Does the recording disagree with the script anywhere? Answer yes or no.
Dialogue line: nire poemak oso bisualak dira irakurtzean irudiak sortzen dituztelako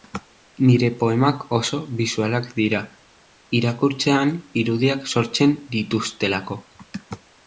no